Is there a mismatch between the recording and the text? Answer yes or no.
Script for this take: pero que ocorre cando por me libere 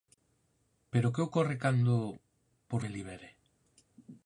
no